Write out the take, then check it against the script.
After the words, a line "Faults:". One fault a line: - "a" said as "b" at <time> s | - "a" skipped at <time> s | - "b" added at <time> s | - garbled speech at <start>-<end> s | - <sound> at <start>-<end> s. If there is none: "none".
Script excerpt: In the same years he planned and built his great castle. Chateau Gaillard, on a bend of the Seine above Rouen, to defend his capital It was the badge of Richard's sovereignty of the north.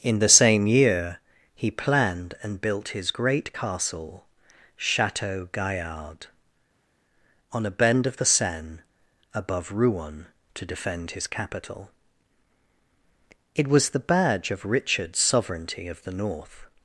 In the same year he planned and built his great castle. Chateau Gaillard, on a bend of the Seine above Rouen, to defend his capital It was the badge of Richard's sovereignty of the north.
Faults:
- "years" said as "year" at 0.7 s